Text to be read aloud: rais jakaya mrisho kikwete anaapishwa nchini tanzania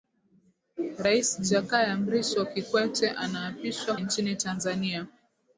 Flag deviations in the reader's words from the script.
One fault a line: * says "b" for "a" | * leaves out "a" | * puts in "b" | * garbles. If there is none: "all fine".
all fine